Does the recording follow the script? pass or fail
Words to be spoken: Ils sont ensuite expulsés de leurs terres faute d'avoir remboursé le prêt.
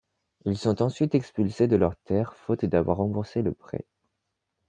pass